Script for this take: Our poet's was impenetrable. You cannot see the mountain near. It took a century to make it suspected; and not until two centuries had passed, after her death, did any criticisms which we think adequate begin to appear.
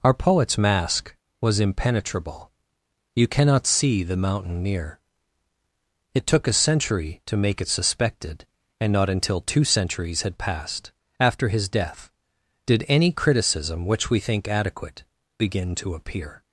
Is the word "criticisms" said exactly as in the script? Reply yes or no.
no